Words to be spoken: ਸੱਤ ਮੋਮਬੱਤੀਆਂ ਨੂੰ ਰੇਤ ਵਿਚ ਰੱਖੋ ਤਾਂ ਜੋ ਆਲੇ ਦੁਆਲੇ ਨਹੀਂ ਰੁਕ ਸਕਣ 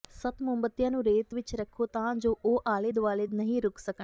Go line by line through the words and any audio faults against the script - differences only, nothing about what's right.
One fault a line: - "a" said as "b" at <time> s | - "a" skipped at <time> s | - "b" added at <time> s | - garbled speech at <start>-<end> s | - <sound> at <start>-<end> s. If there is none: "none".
- "ਉਹ" added at 2.4 s